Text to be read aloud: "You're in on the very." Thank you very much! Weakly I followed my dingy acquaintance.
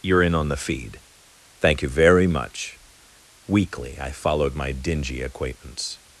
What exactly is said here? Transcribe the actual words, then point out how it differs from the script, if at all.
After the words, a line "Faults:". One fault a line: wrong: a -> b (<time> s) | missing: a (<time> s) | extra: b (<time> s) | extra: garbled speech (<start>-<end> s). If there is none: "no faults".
"You're in on the feed." Thank you very much! Weakly I followed my dingy acquaintance.
Faults:
wrong: very -> feed (0.6 s)